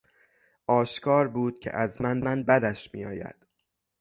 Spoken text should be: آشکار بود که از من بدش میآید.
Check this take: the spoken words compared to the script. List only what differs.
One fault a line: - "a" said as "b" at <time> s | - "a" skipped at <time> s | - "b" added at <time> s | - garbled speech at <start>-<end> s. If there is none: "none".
- "من" added at 2.2 s